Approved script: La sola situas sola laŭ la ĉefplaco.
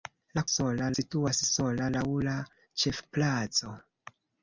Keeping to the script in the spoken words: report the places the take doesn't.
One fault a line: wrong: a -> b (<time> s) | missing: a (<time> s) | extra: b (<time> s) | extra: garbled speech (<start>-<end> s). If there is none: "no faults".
no faults